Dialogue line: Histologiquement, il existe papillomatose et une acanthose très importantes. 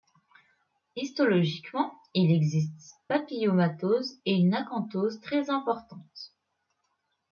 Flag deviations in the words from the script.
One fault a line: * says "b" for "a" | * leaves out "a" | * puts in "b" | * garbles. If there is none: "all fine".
all fine